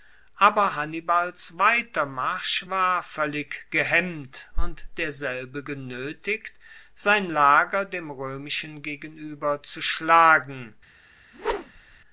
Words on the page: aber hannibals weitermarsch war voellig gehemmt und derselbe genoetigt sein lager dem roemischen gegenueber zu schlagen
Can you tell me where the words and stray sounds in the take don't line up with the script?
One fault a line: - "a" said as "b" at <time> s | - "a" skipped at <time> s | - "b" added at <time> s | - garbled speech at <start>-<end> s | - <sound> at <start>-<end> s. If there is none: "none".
- whoosh at 11.3-12.0 s